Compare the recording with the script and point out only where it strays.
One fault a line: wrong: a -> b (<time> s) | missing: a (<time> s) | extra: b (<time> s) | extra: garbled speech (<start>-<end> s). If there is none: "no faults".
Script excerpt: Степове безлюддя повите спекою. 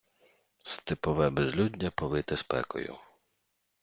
no faults